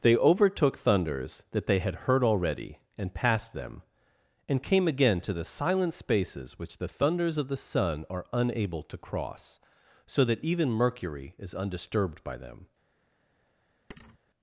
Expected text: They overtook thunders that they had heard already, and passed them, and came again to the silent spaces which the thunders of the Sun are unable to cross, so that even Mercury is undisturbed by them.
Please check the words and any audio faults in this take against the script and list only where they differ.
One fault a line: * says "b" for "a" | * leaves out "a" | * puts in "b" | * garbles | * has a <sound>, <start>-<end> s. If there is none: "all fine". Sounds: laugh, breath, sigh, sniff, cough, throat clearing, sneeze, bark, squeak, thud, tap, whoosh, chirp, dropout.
* has a thud, 13.9-14.2 s